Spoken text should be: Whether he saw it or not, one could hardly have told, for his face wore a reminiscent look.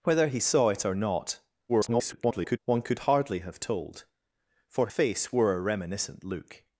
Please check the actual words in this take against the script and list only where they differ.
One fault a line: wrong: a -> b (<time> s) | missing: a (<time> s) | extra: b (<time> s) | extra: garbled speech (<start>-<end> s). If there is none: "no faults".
extra: garbled speech (1.7-2.6 s)
missing: his (4.9 s)